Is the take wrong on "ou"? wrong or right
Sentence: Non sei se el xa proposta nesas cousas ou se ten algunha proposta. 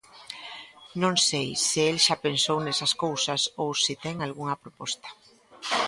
right